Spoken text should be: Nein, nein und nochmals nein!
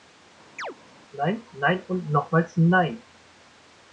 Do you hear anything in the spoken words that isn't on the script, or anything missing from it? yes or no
no